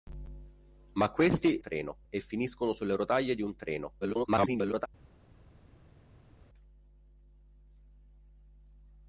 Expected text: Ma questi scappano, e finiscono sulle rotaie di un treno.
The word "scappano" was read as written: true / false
false